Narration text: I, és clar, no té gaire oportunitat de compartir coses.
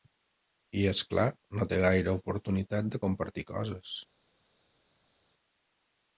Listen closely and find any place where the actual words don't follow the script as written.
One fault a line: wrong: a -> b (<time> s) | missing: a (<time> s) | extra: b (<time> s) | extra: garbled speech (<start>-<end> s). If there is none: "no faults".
no faults